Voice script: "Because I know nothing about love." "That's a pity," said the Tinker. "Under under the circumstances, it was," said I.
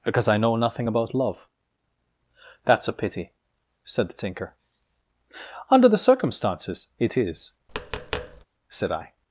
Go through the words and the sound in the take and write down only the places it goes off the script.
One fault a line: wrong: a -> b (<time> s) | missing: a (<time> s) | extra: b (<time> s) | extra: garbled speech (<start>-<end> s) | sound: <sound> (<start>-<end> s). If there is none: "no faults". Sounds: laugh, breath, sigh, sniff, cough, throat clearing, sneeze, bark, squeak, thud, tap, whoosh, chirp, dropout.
missing: under (5.9 s)
wrong: was -> is (7.2 s)
sound: tap (7.7-8.5 s)